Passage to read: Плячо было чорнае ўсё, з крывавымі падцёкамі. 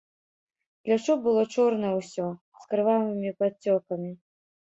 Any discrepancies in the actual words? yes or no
no